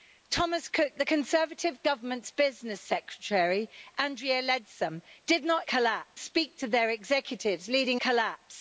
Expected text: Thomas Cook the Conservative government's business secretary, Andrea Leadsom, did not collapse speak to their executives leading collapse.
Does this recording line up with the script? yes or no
yes